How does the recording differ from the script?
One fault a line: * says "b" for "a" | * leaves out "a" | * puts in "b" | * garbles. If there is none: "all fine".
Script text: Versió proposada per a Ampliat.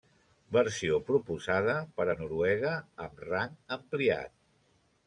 * puts in "Noruega amb rang"